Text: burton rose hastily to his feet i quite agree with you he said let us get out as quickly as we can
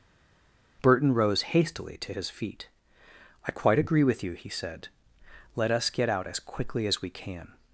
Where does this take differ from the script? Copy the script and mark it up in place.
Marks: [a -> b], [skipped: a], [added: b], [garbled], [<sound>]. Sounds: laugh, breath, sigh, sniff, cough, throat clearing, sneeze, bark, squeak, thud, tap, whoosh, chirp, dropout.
burton rose hastily to his feet i quite agree with you he said let us get out as quickly as we can